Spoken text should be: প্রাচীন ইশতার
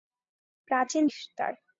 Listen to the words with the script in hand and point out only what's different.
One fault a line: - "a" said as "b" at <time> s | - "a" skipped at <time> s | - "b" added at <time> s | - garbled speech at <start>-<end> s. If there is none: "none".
none